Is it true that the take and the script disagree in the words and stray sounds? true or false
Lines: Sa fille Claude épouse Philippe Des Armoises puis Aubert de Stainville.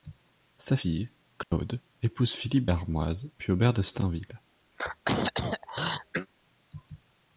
true